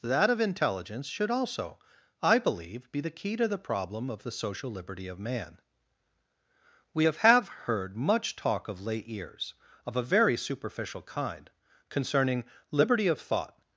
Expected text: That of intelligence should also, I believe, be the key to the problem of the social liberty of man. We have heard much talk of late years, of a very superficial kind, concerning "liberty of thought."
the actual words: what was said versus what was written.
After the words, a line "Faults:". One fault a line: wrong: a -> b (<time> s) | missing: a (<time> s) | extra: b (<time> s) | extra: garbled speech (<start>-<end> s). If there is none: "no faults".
That of intelligence should also, I believe, be the key to the problem of the social liberty of man. We have have heard much talk of late years, of a very superficial kind, concerning "liberty of thought."
Faults:
extra: have (7.2 s)